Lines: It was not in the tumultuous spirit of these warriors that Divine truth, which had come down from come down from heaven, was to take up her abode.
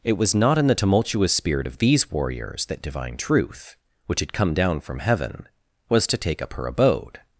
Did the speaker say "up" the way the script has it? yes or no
yes